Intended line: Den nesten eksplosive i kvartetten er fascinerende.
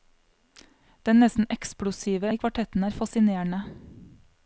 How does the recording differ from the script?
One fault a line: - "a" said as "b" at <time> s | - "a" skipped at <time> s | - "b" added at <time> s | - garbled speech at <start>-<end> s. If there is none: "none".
none